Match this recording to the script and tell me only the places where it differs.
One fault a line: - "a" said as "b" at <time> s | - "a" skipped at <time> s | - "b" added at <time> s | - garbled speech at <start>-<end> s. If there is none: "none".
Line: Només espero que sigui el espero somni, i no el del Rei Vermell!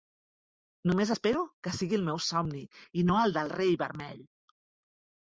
- "espero" said as "meu" at 2.1 s